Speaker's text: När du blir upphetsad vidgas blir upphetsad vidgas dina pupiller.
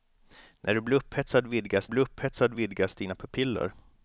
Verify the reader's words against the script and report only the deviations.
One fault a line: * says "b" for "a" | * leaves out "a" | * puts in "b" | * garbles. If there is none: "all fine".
all fine